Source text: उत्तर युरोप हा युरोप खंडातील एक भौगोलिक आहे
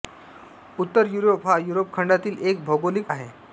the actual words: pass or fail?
pass